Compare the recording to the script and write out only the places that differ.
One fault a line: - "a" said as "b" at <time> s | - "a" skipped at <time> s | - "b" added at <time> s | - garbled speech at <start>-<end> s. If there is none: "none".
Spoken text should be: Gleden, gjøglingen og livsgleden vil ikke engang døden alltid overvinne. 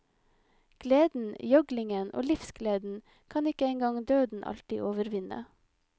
- "vil" said as "kan" at 3.3 s